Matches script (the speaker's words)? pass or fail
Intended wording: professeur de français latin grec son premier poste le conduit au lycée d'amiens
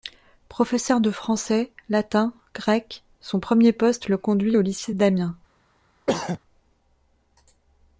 pass